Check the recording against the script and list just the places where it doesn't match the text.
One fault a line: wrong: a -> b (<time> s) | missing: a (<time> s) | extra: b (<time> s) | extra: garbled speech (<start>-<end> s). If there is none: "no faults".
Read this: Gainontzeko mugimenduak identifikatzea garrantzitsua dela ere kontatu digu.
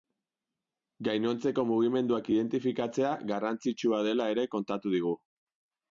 no faults